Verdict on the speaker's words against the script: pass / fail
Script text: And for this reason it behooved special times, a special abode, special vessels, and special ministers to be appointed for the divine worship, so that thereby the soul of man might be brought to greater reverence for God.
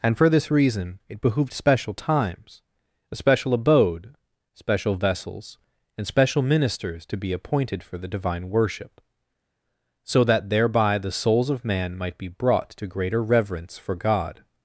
fail